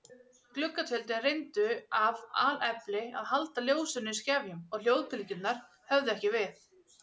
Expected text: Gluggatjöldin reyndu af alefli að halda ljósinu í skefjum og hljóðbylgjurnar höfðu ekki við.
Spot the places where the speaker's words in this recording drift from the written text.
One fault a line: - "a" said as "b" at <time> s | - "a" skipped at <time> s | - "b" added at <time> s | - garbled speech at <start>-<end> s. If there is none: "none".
none